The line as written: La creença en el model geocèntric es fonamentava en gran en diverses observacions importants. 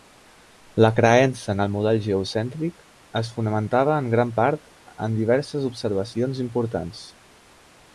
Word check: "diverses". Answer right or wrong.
right